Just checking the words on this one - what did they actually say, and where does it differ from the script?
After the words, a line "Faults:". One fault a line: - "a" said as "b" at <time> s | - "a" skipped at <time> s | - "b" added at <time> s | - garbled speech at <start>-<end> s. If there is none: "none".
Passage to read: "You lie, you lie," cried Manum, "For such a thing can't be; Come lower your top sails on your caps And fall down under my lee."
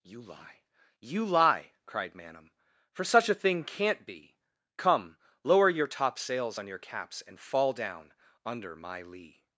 "You lie, you lie," cried Manum, "For such a thing can't be; Come lower your top sails on your caps And fall down under my lee."
Faults:
none